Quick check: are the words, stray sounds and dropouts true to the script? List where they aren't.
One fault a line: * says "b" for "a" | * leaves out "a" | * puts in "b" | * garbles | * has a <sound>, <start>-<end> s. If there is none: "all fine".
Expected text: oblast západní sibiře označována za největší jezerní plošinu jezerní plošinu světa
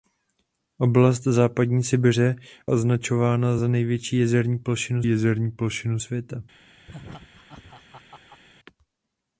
* has a laugh, 6.9-8.4 s